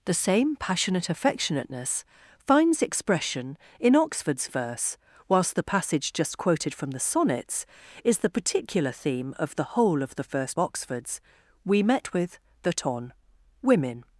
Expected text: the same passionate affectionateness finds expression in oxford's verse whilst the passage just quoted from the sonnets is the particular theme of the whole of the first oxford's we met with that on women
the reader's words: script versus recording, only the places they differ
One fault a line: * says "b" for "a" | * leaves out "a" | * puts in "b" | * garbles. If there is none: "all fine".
all fine